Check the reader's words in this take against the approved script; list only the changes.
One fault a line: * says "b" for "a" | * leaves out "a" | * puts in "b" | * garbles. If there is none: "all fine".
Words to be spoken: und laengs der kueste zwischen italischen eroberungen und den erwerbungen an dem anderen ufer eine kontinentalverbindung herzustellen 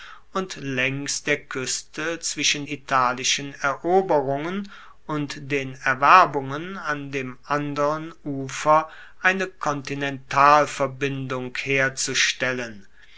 all fine